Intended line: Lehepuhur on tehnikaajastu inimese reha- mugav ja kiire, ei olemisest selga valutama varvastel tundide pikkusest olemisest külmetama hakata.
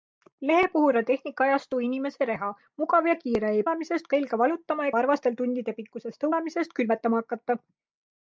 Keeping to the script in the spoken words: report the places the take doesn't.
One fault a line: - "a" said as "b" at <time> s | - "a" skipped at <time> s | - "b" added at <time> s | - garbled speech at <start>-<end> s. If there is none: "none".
none